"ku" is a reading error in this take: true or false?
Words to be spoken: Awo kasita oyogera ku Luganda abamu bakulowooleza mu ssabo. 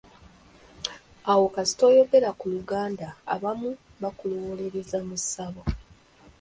false